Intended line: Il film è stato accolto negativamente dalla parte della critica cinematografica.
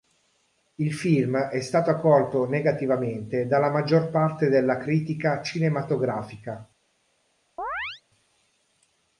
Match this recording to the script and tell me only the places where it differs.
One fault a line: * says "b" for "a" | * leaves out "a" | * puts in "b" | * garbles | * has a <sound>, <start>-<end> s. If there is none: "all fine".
* puts in "maggior"
* has a chirp, 7.6-8.0 s